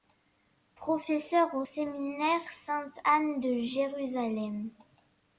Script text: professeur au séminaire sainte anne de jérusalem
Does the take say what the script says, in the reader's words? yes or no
yes